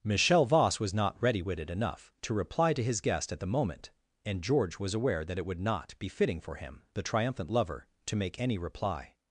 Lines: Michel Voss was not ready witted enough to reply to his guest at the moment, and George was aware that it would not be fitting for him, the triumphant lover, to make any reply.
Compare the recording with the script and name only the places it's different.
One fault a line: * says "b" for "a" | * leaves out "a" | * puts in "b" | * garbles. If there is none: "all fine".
all fine